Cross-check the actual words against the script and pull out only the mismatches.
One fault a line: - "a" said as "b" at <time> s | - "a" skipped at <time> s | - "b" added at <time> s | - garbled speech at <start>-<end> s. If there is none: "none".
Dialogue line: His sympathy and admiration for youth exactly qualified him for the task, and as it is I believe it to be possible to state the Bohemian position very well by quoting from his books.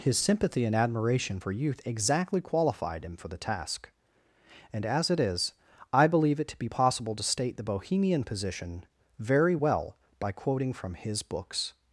none